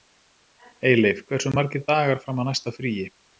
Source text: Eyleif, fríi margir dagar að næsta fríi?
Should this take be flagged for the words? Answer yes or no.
yes